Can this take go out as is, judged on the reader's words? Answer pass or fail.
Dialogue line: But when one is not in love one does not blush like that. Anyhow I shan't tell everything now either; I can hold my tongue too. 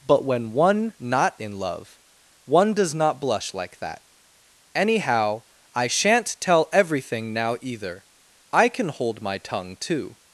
fail